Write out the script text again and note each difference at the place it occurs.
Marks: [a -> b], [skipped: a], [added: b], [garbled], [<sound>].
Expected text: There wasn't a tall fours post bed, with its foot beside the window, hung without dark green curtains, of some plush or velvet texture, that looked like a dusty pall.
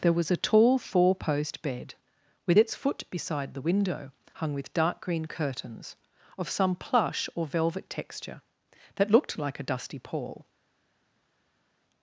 There [wasn't -> was] a tall [fours -> four] post bed, with its foot beside the window, hung [without -> with] dark green curtains, of some plush or velvet texture, that looked like a dusty pall.